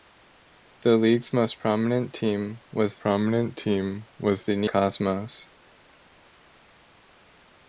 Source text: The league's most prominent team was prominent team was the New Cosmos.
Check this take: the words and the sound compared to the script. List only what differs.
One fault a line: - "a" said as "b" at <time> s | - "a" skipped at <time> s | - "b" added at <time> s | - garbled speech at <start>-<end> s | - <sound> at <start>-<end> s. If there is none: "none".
none